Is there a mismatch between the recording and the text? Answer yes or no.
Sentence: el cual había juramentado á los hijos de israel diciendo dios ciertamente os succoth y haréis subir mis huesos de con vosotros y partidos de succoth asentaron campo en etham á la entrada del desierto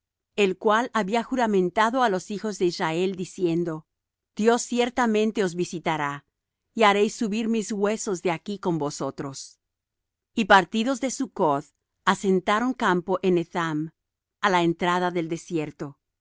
yes